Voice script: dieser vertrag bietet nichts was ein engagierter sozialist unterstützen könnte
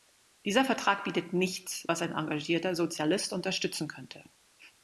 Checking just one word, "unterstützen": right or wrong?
right